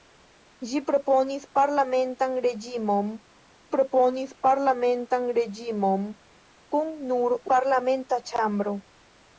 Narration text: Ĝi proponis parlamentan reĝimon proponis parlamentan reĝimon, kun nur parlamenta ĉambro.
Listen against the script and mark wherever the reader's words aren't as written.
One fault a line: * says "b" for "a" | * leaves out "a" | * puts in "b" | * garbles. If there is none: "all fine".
all fine